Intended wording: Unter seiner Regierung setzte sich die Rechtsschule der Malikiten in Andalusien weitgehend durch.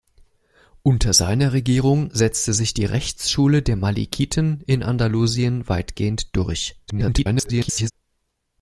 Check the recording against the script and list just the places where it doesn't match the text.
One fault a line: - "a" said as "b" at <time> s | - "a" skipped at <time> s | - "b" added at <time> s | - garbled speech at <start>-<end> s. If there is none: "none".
- garbled speech at 6.9-7.9 s